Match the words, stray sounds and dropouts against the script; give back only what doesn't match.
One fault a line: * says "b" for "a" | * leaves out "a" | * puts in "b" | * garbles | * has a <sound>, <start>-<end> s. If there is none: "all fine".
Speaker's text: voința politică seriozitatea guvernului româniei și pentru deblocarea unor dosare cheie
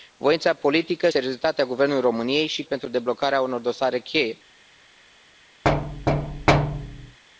* has a thud, 5.6-7.2 s